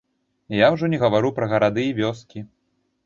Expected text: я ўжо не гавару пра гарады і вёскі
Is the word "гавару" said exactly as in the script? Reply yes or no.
yes